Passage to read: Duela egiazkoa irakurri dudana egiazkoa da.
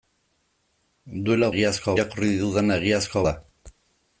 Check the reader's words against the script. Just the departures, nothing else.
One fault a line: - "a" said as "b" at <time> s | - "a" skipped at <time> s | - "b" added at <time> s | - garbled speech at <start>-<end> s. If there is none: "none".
none